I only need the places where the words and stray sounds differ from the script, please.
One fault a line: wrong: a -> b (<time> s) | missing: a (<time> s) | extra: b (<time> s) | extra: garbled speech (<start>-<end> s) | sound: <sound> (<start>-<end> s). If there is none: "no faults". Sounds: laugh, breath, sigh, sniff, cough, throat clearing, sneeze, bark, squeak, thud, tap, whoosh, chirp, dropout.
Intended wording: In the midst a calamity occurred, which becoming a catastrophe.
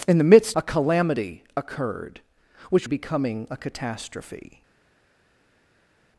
no faults